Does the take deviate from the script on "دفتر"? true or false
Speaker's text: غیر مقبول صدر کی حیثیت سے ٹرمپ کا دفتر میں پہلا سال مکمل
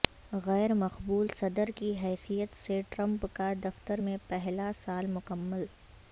false